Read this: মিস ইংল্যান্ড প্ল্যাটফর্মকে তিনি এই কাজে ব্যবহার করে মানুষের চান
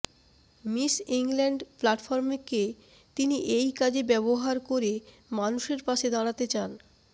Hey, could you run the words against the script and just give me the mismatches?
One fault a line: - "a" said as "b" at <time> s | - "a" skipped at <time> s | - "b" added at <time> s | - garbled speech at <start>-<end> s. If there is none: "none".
- "পাশে দাঁড়াতে" added at 5.9 s